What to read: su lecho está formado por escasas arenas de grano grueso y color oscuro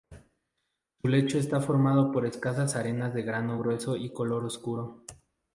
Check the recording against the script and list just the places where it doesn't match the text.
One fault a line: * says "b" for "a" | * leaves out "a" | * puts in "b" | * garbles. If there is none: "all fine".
all fine